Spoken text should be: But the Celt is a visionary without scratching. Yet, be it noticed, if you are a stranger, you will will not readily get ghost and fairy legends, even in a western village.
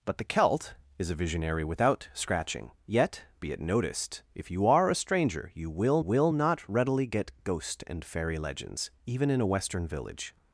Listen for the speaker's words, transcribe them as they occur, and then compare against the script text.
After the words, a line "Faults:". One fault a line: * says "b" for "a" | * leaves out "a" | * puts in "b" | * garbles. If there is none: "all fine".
But the Celt is a visionary without scratching. Yet, be it noticed, if you are a stranger, you will will not readily get ghost and fairy legends, even in a western village.
Faults:
all fine